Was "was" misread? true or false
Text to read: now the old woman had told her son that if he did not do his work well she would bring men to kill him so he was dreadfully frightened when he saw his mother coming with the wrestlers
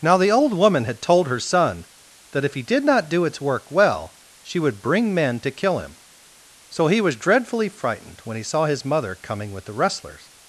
false